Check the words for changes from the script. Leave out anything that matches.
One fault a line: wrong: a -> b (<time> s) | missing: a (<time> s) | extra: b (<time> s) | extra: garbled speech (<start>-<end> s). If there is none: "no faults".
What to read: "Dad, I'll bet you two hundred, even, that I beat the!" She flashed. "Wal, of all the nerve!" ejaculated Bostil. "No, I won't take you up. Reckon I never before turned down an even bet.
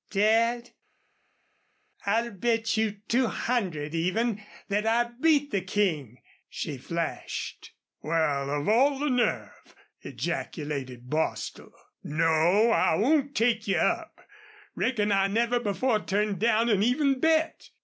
extra: King (5.6 s)